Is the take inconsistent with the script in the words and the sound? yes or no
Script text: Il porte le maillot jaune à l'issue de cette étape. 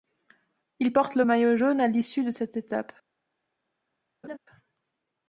yes